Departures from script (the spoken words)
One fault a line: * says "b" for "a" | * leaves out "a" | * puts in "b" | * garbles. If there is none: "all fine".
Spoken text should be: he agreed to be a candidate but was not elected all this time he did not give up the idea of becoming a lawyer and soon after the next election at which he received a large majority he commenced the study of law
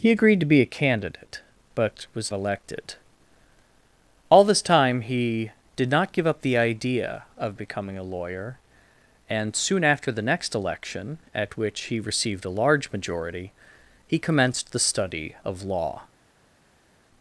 * leaves out "not"